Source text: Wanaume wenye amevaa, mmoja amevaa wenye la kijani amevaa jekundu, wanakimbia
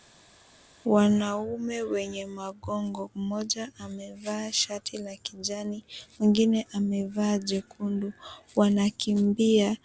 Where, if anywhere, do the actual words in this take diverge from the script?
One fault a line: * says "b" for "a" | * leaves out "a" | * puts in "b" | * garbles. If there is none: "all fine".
* says "magongo" for "amevaa"
* says "shati" for "wenye"
* puts in "mwingine"